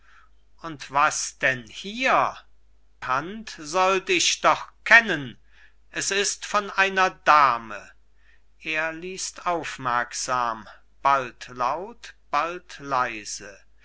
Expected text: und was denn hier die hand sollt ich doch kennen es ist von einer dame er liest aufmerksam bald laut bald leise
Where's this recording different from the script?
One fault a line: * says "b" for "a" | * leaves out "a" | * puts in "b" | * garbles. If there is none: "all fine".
* leaves out "die"